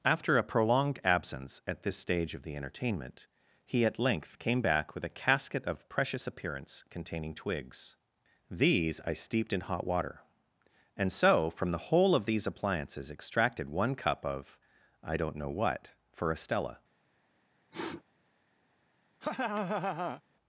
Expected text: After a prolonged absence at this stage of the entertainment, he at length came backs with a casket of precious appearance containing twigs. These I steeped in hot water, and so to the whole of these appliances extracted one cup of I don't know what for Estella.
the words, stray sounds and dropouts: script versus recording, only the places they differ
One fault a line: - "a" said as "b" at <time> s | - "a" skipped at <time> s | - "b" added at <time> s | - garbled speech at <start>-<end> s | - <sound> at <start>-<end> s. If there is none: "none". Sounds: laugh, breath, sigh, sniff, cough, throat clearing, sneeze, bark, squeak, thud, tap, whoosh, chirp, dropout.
- "backs" said as "back" at 4.6 s
- "to" said as "from" at 11.5 s
- sniff at 17.7-18.0 s
- laugh at 19.2-20.2 s